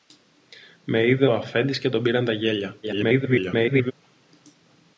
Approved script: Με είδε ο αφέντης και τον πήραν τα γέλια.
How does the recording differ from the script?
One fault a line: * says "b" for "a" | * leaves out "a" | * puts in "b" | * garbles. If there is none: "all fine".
* garbles